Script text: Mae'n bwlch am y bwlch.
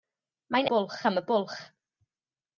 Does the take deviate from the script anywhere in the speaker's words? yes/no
no